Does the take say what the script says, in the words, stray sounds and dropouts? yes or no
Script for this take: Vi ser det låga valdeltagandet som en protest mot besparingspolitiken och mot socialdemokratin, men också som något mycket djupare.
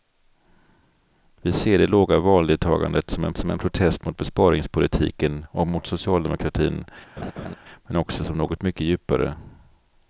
no